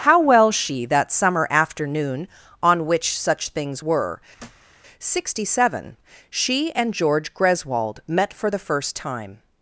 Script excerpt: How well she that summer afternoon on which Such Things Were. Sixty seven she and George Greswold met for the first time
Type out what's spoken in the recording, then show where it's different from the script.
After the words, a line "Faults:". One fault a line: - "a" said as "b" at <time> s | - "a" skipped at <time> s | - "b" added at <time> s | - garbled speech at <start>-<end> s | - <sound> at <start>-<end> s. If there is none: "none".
How well she that summer afternoon on which Such Things Were. Sixty seven she and George Greswold met for the first time
Faults:
- thud at 4.4-4.7 s